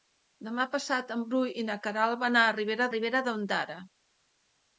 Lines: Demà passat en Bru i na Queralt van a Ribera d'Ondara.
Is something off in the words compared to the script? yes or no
yes